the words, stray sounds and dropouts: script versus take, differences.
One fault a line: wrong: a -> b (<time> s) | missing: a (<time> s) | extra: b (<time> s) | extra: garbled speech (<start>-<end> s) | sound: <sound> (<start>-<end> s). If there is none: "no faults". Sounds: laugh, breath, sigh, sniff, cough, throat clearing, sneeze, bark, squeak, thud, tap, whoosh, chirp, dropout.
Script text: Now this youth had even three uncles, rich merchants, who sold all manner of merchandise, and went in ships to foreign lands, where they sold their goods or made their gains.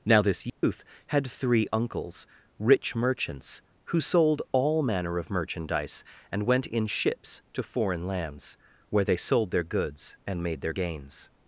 sound: dropout (0.5-0.6 s)
missing: even (1.3 s)
wrong: or -> and (10.2 s)